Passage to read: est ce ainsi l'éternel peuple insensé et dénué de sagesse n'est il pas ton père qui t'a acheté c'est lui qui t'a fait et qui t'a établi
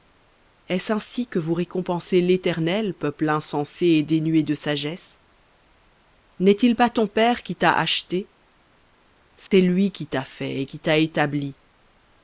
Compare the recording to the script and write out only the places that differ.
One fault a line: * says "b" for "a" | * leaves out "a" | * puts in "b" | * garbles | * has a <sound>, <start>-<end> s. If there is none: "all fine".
* puts in "que vous récompensez"
* has a dropout, 9.5-9.5 s